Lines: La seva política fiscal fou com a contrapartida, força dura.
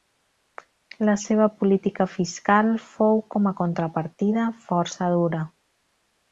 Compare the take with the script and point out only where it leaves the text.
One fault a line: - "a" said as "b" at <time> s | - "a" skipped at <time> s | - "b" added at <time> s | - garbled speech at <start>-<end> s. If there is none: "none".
none